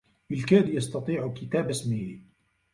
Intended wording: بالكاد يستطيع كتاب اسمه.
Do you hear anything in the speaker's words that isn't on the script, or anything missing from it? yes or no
no